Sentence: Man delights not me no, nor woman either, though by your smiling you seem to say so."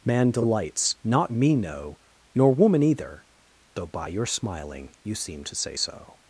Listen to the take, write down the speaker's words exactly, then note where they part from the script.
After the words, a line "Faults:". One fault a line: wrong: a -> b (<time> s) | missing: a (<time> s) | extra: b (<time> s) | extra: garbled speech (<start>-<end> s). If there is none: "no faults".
Man delights not me no, nor woman either, though by your smiling you seem to say so."
Faults:
no faults